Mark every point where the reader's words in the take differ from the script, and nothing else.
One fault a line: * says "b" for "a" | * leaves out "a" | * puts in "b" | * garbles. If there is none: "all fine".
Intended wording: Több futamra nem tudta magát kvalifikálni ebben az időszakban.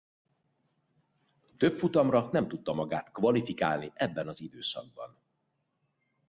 all fine